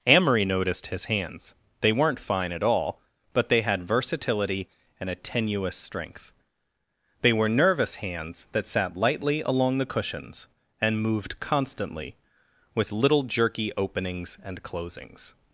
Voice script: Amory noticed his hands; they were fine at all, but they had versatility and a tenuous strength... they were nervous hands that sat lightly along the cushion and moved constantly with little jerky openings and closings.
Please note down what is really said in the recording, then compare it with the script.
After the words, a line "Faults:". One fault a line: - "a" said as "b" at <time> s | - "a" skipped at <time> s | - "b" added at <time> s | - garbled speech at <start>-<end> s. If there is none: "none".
Amory noticed his hands; they weren't fine at all, but they had versatility and a tenuous strength... they were nervous hands that sat lightly along the cushions and moved constantly with little jerky openings and closings.
Faults:
- "were" said as "weren't" at 1.9 s
- "cushion" said as "cushions" at 9.9 s